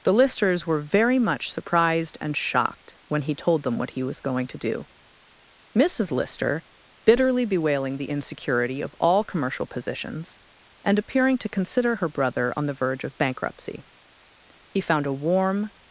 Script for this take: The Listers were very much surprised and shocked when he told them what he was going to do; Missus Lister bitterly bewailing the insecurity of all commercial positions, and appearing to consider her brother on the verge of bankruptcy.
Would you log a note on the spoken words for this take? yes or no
yes